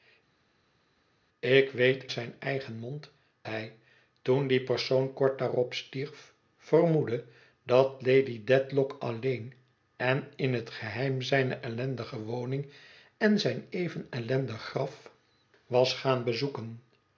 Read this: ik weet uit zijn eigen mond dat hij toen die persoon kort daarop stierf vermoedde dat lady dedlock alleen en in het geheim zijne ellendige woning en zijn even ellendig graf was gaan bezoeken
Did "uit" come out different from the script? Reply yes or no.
yes